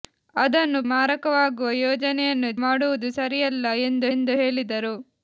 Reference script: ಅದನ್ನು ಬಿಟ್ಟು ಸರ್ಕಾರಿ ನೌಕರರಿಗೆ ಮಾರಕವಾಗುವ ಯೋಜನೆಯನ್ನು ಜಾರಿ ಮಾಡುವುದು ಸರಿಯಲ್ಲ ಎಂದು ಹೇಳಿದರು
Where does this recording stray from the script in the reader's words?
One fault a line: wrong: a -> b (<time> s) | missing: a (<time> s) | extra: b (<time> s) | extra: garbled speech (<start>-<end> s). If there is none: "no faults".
missing: ಬಿಟ್ಟು ಸರ್ಕಾರಿ ನೌಕರರಿಗೆ (0.8 s)
missing: ಜಾರಿ (2.5 s)
extra: ಎಂದು (4.1 s)